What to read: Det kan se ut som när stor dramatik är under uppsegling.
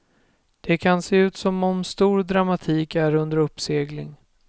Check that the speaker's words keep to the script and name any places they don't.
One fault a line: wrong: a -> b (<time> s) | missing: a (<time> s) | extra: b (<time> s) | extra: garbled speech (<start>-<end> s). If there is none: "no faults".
wrong: när -> om (1.6 s)